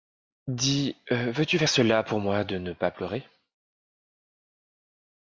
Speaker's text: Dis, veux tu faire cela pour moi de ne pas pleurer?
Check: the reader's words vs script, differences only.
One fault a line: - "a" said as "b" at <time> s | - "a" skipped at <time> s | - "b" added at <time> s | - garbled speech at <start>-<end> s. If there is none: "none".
none